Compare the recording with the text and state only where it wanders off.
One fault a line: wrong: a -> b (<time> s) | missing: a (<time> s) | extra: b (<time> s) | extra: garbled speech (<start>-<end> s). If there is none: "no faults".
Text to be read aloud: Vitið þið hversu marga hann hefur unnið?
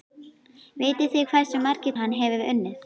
no faults